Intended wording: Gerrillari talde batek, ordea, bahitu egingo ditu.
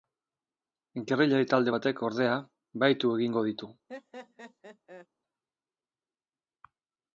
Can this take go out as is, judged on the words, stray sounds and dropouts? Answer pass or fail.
fail